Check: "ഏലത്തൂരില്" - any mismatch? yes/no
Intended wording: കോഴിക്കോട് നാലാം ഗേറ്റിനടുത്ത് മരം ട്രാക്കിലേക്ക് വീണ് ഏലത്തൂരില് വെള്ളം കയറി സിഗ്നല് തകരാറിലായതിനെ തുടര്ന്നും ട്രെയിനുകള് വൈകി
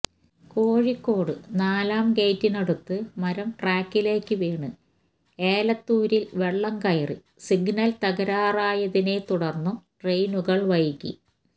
no